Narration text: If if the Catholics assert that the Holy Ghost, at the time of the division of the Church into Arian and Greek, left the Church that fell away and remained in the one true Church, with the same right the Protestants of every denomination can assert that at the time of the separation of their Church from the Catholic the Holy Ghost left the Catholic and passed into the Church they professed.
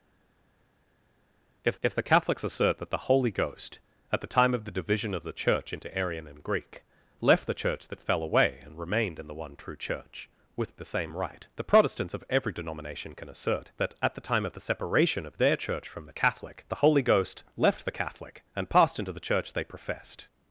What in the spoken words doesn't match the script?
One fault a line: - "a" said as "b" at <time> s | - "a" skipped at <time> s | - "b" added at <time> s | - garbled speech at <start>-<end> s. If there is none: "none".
none